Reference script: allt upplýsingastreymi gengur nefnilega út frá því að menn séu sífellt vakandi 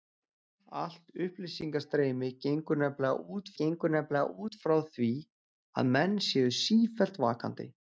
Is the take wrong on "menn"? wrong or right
right